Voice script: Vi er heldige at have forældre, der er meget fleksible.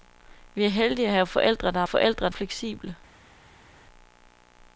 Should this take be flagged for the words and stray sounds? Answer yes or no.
yes